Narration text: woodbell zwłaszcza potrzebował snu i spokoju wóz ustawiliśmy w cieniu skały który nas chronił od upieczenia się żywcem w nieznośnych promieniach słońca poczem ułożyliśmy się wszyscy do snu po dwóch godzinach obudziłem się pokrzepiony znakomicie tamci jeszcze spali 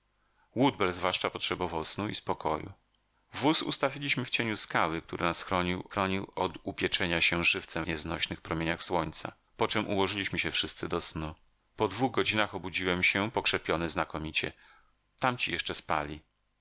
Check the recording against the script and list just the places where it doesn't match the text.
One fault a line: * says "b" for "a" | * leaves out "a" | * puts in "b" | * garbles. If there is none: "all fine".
* puts in "chronił"
* leaves out "w"